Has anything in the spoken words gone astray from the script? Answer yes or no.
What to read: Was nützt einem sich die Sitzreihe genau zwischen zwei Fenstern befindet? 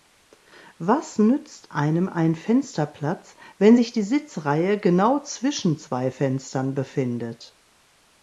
yes